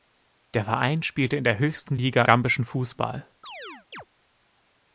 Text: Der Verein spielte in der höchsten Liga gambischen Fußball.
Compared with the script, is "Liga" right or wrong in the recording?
right